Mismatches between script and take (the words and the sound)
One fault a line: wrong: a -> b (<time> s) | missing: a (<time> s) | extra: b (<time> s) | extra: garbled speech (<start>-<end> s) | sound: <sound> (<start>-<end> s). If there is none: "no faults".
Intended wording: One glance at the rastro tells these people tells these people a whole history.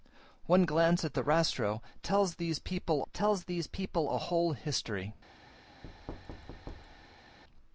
sound: thud (5.8-7.4 s)